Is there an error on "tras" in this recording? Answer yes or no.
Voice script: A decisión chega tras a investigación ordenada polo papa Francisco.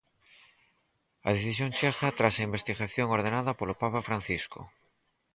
no